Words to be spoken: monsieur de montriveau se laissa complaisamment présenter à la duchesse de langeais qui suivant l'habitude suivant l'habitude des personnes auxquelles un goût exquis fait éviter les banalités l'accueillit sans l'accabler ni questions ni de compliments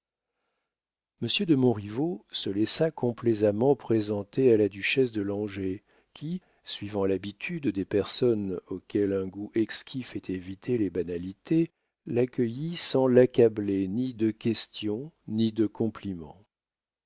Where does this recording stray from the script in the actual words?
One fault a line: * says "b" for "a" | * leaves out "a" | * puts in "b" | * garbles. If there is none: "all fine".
* leaves out "suivant l'habitude"
* puts in "de"